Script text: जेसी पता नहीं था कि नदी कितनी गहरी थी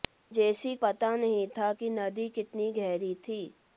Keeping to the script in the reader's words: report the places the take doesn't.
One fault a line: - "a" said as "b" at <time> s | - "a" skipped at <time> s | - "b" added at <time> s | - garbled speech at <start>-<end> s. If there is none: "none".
none